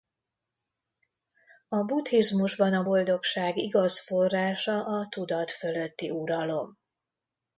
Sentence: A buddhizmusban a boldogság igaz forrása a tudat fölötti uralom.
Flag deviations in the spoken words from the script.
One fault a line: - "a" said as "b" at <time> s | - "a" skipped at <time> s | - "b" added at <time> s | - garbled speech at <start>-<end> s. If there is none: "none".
none